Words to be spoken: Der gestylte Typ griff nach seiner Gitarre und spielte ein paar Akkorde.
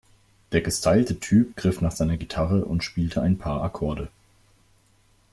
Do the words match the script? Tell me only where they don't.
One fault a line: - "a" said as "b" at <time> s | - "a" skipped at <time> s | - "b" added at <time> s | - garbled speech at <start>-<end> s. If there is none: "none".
none